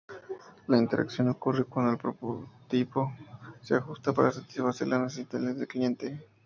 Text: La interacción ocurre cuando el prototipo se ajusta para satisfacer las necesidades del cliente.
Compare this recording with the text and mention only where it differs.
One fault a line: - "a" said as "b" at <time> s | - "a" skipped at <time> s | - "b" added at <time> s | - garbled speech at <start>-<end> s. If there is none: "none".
none